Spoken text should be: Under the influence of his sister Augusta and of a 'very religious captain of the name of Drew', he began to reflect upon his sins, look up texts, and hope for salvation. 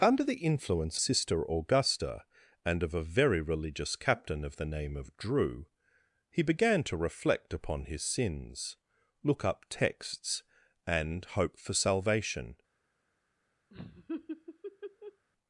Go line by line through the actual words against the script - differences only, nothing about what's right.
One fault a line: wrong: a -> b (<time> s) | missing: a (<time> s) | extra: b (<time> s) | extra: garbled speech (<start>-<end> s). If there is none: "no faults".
missing: of his (1.0 s)